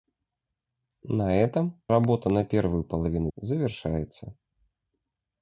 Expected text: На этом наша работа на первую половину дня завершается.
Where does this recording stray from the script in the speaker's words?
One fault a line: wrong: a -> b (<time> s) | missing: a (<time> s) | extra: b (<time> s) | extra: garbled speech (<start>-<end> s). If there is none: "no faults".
missing: наша (1.8 s)
missing: дня (3.3 s)